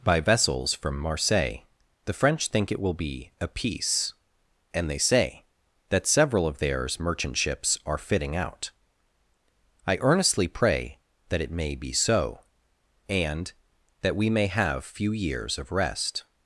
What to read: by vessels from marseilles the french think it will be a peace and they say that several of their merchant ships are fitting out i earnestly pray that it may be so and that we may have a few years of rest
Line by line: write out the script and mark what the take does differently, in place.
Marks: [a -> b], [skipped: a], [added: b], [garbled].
by vessels from marseilles the french think it will be a peace and they say that several of [their -> theirs] merchant ships are fitting out i earnestly pray that it may be so and that we may have [skipped: a] few years of rest